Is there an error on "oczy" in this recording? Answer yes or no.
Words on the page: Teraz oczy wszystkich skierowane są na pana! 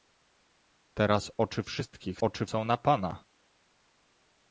no